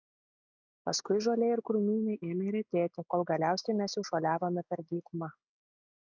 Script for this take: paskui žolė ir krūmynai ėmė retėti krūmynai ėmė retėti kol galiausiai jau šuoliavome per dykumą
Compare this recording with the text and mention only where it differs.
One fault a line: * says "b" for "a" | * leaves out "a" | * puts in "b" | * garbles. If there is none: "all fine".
* leaves out "krūmynai ėmė retėti"
* puts in "mes"